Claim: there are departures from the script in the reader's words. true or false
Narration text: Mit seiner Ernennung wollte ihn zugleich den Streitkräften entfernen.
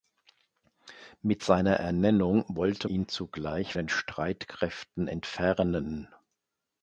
false